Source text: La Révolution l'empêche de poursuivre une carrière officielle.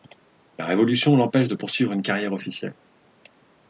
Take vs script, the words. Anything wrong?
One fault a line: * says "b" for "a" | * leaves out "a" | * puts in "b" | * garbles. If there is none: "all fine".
all fine